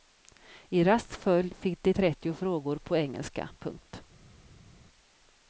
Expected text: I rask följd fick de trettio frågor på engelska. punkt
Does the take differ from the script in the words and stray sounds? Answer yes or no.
no